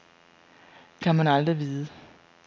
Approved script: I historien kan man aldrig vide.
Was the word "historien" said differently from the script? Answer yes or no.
yes